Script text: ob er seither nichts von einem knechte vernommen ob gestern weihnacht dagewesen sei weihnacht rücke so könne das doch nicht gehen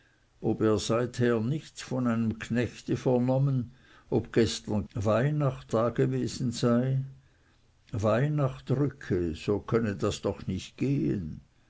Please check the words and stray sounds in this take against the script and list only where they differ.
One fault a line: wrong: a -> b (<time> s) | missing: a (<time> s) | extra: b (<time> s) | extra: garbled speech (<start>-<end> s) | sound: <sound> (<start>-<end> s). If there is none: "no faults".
no faults